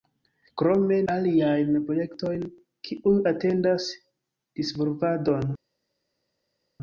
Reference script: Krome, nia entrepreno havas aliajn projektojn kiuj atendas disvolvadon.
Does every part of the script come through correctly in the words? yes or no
no